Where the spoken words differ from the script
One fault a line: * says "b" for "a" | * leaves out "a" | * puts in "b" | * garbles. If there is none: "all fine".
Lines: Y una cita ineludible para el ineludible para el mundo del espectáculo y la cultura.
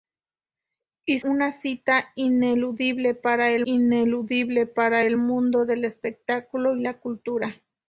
all fine